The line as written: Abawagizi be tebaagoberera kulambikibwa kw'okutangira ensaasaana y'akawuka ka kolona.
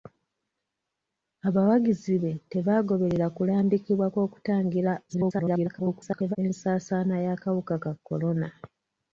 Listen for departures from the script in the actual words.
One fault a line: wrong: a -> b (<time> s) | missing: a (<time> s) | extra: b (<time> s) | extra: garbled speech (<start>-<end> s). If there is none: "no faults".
extra: garbled speech (5.1-6.4 s)